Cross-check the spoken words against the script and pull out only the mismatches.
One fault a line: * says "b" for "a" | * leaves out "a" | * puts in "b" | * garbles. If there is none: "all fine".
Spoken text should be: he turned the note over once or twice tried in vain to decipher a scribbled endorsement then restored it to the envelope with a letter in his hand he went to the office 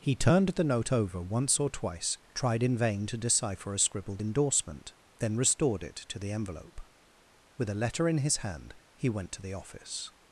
all fine